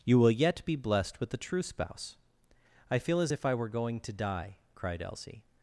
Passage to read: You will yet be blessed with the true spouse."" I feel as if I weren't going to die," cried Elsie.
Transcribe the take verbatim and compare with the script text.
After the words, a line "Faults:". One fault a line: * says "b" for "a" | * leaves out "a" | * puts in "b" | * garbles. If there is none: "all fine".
You will yet be blessed with the true spouse."" I feel as if I were going to die," cried Elsie.
Faults:
* says "were" for "weren't"